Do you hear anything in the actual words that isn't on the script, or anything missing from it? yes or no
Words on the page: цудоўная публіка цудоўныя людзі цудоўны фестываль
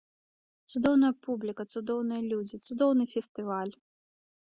no